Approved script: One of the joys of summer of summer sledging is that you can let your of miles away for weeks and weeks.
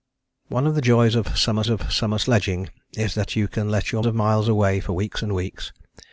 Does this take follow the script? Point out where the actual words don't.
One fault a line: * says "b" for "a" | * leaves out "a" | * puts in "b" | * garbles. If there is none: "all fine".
all fine